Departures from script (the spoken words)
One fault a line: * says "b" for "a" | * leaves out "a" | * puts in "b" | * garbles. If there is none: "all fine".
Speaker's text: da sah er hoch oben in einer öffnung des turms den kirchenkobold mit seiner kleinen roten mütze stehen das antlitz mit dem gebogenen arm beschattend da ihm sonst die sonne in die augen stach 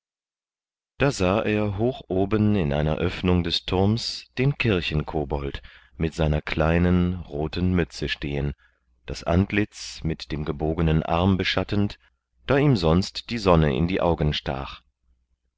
all fine